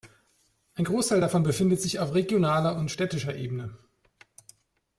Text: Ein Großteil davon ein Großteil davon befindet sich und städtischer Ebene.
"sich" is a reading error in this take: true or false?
true